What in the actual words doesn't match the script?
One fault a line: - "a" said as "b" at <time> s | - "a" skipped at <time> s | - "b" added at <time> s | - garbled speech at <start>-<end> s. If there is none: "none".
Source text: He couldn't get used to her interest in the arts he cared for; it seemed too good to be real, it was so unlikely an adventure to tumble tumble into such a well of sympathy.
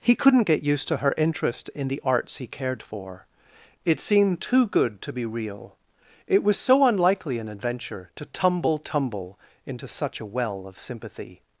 none